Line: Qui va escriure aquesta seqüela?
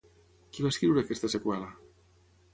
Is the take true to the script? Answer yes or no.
yes